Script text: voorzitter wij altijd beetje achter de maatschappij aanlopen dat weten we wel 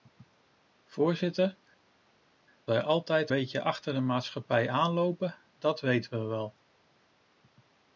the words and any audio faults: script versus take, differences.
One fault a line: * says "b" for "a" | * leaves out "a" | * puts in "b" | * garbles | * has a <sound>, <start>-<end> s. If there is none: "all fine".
all fine